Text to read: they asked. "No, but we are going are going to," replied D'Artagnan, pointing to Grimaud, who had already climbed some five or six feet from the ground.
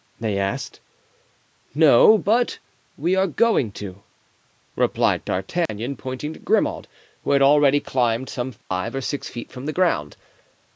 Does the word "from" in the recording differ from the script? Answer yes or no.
no